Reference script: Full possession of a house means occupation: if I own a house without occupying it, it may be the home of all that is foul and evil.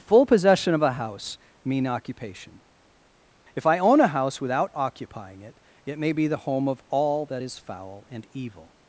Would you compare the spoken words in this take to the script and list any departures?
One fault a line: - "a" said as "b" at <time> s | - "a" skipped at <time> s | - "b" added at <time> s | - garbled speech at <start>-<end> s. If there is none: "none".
- "means" said as "mean" at 1.6 s